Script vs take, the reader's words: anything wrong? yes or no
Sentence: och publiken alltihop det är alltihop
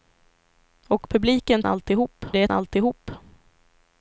no